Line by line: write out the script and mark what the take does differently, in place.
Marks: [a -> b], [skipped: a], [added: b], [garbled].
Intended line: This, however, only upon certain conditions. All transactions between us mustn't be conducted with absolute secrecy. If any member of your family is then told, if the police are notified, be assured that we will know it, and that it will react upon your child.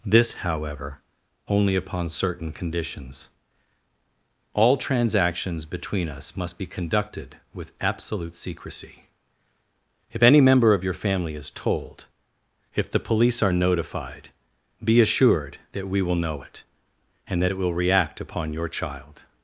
This, however, only upon certain conditions. All transactions between us [mustn't -> must] be conducted with absolute secrecy. If any member of your family is [skipped: then] told, if the police are notified, be assured that we will know it, and that it will react upon your child.